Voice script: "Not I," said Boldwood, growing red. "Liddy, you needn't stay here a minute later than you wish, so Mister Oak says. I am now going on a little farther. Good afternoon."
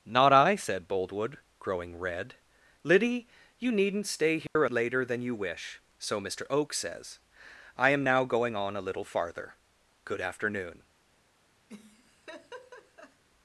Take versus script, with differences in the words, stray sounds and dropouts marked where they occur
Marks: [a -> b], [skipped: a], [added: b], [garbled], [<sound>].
"Not I," said Boldwood, growing red. "Liddy, you needn't stay here [dropout] a [skipped: minute] later than you wish, so Mister Oak says. I am now going on a little farther. Good afternoon." [laugh]